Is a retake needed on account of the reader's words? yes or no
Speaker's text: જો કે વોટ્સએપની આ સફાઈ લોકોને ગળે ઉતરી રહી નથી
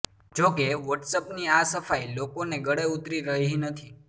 no